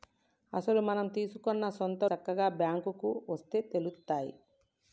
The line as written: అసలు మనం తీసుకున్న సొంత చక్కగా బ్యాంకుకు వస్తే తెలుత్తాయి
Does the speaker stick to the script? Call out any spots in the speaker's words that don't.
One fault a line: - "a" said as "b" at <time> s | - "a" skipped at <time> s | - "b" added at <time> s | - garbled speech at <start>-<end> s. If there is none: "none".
none